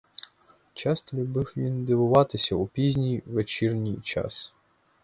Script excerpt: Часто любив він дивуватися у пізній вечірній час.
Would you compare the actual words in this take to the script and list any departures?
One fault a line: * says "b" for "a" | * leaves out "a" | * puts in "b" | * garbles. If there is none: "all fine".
all fine